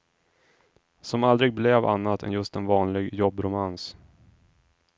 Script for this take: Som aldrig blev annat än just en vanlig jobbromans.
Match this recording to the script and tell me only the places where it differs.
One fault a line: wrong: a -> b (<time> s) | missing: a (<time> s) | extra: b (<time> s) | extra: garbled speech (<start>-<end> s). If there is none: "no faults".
no faults